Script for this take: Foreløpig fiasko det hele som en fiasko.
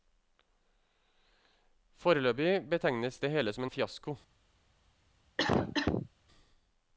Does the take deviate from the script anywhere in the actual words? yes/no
yes